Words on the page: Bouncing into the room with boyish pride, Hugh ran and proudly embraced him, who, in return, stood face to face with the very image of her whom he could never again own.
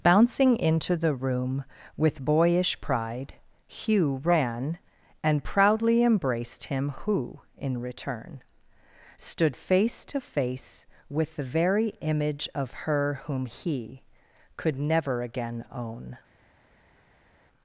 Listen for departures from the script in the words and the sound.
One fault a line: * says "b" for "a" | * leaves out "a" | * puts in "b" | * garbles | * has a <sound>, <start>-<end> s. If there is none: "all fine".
all fine